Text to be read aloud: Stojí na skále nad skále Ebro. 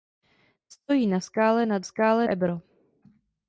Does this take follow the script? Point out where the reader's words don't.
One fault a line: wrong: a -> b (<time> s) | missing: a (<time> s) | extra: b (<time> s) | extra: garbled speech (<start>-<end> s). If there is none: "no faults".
no faults